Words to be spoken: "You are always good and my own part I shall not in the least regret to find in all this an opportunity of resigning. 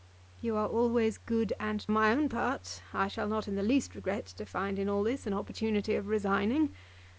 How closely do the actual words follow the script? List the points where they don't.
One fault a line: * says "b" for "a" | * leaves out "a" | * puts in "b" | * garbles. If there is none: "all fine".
all fine